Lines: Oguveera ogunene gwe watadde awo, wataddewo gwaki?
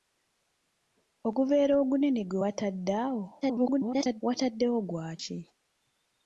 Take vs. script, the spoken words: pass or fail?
fail